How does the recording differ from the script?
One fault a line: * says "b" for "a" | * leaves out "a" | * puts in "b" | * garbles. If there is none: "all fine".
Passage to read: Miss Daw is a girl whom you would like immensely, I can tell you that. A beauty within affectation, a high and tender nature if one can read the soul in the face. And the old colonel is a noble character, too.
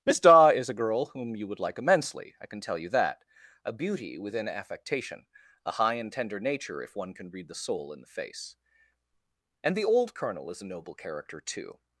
all fine